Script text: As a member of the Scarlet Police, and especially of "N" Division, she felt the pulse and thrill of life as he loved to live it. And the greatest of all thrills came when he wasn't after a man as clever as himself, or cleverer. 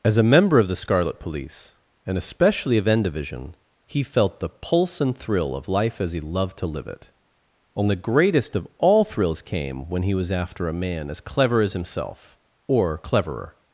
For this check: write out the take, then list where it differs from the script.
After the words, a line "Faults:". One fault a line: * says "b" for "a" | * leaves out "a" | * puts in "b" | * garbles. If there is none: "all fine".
As a member of the Scarlet Police, and especially of "N" Division, he felt the pulse and thrill of life as he loved to live it. And the greatest of all thrills came when he was after a man as clever as himself, or cleverer.
Faults:
* says "he" for "she"
* says "was" for "wasn't"